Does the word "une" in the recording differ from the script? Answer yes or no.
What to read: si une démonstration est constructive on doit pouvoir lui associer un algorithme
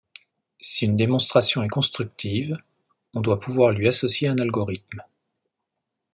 no